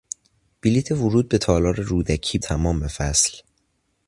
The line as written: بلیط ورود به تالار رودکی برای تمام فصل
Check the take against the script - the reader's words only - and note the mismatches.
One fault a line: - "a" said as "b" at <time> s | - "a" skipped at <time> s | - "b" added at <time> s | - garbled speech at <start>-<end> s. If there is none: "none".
- "برای" skipped at 2.4 s